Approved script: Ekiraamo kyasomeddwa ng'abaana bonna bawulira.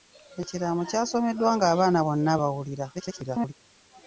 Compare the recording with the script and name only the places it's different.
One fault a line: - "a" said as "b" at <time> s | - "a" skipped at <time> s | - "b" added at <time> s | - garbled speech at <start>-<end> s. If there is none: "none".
- garbled speech at 2.9-3.5 s